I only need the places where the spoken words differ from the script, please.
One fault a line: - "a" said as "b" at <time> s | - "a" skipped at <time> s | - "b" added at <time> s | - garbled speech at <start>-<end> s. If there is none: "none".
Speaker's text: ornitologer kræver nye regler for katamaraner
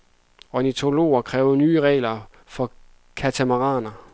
none